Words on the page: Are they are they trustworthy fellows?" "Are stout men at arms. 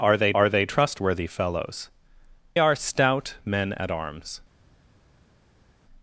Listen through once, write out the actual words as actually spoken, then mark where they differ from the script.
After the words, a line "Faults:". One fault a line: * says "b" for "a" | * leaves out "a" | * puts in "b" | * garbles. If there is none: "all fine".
Are they are they trustworthy fellows?" "Are stout men at arms.
Faults:
all fine